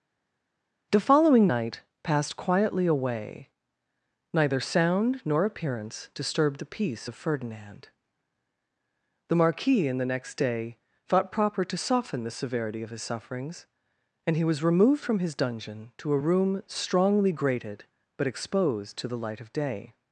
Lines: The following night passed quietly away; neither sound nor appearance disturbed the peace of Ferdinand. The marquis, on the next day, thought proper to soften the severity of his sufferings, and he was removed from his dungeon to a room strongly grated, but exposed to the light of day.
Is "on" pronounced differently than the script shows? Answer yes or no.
yes